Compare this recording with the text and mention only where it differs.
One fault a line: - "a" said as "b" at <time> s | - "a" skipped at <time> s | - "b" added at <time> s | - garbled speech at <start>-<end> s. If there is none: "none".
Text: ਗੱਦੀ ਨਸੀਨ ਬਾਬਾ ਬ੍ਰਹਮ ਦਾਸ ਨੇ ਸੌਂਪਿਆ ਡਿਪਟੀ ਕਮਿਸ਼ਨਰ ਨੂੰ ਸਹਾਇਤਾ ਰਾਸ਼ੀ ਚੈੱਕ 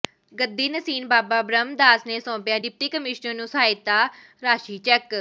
none